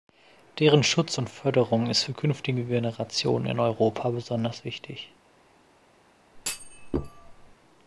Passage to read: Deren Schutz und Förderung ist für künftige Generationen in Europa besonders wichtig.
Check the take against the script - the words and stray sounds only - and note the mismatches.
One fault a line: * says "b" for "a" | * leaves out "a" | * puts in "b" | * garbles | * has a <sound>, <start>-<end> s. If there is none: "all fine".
* has a thud, 6.3-7.5 s